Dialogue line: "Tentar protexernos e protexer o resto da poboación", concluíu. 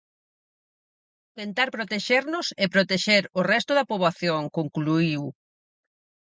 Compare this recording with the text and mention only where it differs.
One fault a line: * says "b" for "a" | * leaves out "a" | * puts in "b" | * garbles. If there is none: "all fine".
all fine